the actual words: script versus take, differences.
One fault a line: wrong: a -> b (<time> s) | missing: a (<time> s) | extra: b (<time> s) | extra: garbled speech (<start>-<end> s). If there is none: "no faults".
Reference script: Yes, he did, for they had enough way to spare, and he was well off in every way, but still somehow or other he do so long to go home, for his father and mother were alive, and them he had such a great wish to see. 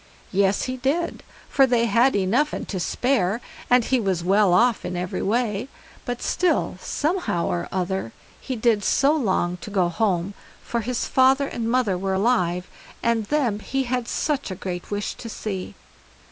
wrong: way -> and (2.5 s)
wrong: do -> did (8.6 s)